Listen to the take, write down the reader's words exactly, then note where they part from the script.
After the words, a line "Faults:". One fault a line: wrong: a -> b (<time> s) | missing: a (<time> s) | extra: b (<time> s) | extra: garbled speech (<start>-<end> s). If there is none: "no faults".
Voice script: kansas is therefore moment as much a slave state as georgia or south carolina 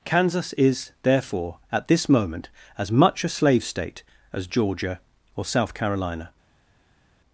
kansas is therefore at this moment as much a slave state as georgia or south carolina
Faults:
extra: at this (1.7 s)